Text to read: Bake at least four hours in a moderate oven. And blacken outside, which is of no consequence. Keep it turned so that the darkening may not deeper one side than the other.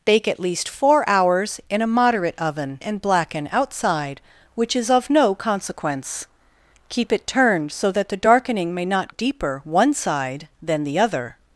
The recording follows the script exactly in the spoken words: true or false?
true